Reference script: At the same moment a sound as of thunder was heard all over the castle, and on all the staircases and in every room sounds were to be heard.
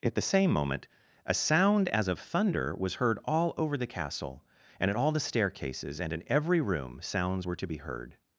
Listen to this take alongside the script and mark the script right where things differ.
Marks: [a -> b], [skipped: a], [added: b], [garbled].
At the same moment a sound as of thunder was heard all over the castle, and [on -> at] all the staircases and in every room sounds were to be heard.